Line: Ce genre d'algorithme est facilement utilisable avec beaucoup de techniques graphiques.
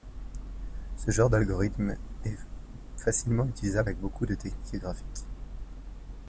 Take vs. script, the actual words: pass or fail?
pass